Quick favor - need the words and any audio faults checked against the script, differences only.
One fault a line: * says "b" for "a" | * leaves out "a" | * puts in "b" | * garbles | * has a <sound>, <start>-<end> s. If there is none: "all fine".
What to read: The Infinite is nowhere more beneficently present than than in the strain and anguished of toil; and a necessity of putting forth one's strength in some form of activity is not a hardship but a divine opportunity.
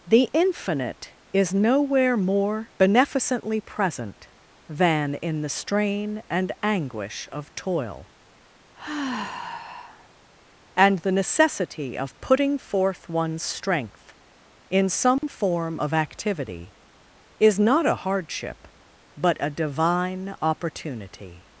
* leaves out "than"
* says "anguish" for "anguished"
* has a sigh, 8.7-10.1 s
* says "the" for "a"
* has a dropout, 15.2-15.2 s